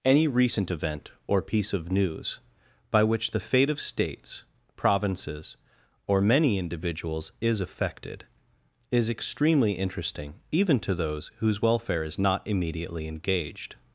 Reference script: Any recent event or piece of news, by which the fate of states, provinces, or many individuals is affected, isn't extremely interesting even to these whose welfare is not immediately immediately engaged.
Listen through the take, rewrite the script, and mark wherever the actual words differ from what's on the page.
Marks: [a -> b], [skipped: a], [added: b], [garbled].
Any recent event or piece of news, by which the fate of states, provinces, or many individuals is affected, [isn't -> is] extremely interesting even to [these -> those] whose welfare is not immediately [skipped: immediately] engaged.